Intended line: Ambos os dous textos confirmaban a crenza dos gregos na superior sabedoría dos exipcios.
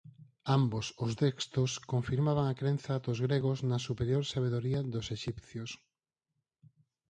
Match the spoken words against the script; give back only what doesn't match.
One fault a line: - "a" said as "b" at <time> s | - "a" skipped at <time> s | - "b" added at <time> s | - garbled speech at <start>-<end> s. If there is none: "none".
- "dous" skipped at 1.1 s